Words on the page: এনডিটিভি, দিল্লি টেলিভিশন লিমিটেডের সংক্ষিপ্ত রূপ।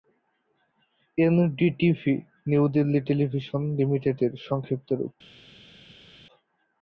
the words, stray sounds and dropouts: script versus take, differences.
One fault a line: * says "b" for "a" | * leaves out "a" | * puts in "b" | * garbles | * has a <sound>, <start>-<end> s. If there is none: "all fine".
* puts in "নিউ"